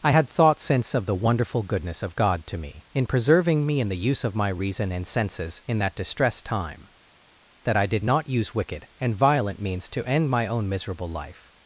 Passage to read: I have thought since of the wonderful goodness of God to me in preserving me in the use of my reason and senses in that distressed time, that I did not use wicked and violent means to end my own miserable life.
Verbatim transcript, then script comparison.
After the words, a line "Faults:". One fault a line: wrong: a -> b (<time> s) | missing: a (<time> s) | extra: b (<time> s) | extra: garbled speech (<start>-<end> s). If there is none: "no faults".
I had thought since of the wonderful goodness of God to me in preserving me in the use of my reason and senses in that distressed time, that I did not use wicked and violent means to end my own miserable life.
Faults:
wrong: have -> had (0.1 s)